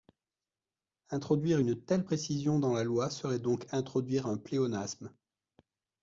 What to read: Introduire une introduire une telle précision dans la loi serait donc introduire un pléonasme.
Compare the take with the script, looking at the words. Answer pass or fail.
fail